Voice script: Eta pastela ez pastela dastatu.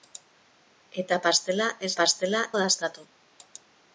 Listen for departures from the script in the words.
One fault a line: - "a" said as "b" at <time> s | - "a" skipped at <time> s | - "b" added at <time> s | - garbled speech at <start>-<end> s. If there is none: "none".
none